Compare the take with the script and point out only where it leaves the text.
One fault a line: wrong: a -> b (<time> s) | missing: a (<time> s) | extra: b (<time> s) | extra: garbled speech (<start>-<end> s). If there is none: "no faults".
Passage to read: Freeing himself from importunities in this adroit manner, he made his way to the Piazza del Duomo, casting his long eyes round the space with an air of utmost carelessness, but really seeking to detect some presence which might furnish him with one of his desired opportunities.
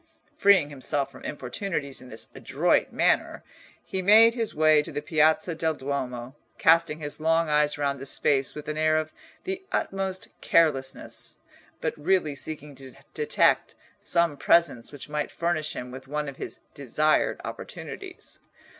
extra: the (9.4 s)